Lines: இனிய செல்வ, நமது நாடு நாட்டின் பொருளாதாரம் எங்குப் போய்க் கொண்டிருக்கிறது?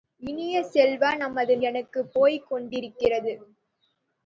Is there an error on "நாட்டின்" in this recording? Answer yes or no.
yes